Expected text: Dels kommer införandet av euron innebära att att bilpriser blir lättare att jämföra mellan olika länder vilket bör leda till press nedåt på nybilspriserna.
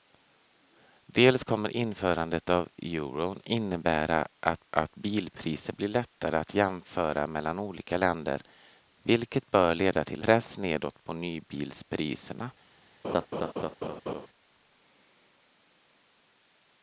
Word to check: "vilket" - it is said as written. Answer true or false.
true